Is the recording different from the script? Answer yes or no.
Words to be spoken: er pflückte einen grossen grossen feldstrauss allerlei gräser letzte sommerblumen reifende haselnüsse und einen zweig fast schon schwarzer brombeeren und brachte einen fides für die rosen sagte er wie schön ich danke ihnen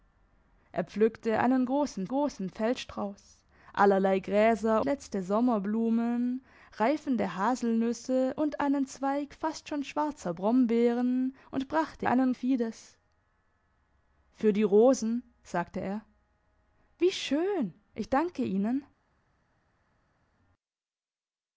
no